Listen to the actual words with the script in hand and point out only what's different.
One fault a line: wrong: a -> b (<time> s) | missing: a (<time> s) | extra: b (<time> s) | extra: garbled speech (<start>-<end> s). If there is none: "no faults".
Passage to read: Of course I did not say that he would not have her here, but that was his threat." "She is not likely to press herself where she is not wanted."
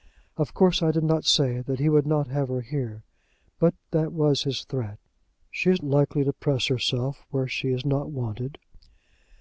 missing: not (5.8 s)